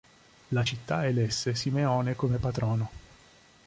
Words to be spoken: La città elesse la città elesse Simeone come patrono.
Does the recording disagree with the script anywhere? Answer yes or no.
yes